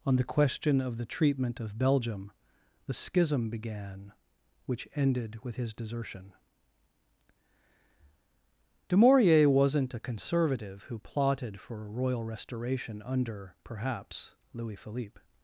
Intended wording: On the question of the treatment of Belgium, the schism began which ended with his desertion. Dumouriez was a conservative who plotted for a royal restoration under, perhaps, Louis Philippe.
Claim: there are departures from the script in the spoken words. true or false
true